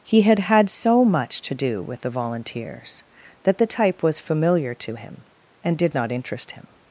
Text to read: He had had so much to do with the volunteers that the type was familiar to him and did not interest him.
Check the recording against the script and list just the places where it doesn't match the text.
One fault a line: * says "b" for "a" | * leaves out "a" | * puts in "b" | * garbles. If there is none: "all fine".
all fine